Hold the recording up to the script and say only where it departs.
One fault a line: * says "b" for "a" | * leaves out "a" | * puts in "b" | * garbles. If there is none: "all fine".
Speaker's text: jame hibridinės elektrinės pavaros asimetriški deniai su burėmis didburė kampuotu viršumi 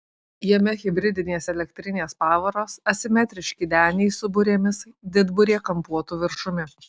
all fine